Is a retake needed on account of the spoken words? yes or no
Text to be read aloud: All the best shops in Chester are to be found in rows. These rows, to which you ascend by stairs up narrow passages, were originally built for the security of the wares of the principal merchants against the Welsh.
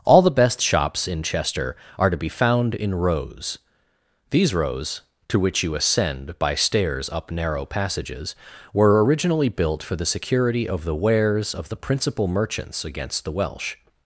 no